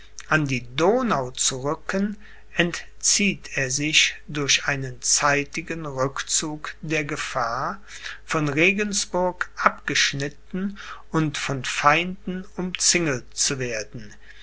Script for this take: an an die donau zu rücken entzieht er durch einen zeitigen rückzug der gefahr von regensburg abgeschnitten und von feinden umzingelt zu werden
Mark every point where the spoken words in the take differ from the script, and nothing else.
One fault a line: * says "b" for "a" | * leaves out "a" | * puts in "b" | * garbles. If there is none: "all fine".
* leaves out "an"
* puts in "sich"